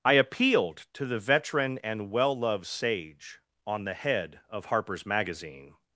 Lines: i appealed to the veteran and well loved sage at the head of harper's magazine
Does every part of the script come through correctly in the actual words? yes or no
no